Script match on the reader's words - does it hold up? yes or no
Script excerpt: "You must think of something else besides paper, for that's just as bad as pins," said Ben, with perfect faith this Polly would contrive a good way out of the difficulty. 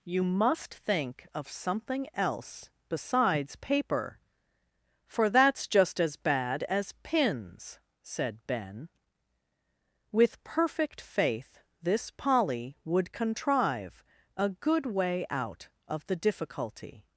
yes